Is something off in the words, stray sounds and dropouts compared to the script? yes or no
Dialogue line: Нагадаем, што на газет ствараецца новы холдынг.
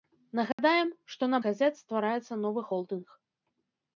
yes